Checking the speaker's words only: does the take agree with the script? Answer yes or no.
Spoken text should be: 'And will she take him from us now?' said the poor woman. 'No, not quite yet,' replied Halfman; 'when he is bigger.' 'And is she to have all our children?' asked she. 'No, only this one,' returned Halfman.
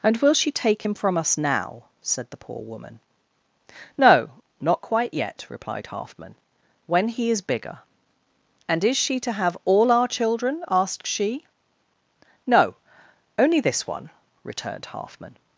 yes